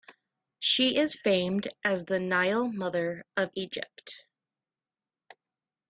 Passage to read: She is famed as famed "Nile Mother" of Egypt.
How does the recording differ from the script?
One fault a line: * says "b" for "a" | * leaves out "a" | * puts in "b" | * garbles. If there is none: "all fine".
* says "the" for "famed"